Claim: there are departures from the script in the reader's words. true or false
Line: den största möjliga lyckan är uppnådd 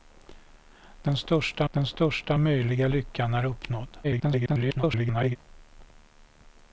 true